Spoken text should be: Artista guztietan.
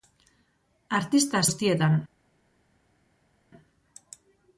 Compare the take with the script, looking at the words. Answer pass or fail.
pass